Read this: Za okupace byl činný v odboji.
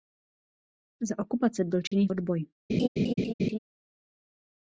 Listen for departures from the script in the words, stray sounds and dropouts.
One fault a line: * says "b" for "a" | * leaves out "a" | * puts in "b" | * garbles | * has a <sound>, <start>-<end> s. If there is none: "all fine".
* has a dropout, 1.9-1.9 s
* has a laugh, 2.7-3.6 s